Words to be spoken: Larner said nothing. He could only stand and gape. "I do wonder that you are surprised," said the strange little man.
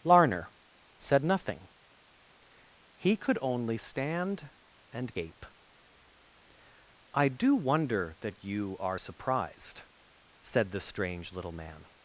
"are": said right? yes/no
yes